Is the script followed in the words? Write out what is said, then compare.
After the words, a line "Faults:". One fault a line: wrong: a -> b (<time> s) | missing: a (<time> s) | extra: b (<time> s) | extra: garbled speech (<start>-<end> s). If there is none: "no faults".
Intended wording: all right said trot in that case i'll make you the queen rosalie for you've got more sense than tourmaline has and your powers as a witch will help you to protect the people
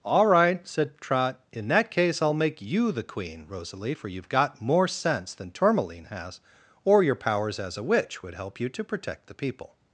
all right said trot in that case i'll make you the queen rosalie for you've got more sense than tourmaline has or your powers as a witch would help you to protect the people
Faults:
wrong: and -> or (6.9 s)
wrong: will -> would (8.2 s)